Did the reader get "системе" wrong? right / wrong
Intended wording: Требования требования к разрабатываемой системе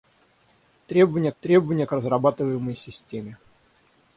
right